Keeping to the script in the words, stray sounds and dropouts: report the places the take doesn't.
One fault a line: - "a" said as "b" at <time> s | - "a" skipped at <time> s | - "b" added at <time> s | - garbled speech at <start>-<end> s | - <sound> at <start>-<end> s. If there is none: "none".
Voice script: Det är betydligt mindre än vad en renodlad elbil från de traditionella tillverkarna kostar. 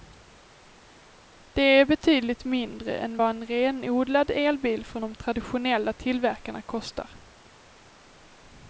none